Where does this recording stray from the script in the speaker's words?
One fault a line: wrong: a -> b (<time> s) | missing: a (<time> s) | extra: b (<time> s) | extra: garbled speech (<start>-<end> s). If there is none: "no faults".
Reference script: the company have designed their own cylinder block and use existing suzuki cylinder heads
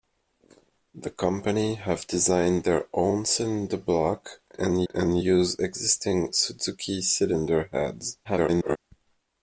extra: and (4.9 s)
extra: garbled speech (8.2-8.8 s)